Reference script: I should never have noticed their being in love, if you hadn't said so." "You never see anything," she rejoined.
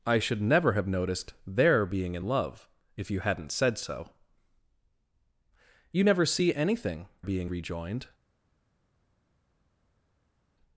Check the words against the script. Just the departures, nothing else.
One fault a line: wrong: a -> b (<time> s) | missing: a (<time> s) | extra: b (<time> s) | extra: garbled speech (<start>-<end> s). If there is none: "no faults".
wrong: she -> being (7.2 s)